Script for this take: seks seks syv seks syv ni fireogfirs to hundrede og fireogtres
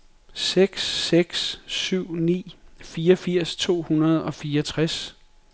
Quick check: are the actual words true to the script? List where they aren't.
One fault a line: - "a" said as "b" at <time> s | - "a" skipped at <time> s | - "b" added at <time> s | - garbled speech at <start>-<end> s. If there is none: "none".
- "seks syv" skipped at 2.1 s